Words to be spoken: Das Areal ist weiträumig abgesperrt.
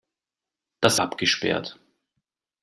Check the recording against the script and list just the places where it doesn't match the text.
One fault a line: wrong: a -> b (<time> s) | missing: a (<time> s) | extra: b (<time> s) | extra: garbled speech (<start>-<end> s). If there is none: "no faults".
missing: Areal ist weiträumig (1.0 s)